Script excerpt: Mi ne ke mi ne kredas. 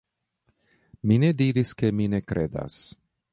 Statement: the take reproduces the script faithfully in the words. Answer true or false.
false